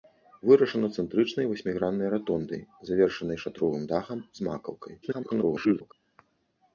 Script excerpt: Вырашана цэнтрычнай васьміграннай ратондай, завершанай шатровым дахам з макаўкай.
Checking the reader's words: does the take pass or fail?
fail